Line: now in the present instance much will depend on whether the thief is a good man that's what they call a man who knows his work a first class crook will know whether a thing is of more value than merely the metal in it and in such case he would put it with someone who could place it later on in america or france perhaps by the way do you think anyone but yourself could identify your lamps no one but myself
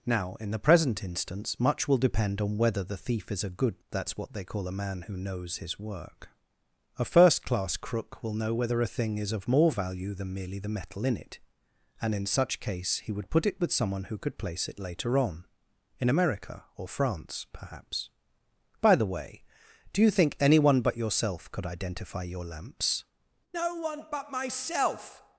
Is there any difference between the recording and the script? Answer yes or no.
yes